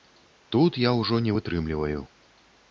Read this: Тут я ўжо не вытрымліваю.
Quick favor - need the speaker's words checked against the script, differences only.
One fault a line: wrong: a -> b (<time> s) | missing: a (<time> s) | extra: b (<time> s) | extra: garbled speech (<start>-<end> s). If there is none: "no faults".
no faults